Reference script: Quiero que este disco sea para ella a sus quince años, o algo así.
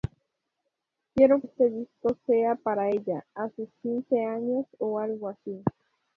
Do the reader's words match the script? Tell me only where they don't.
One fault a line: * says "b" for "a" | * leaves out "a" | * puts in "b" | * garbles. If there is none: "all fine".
* leaves out "que"